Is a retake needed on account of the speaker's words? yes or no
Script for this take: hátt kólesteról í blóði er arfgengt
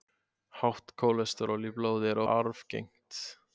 no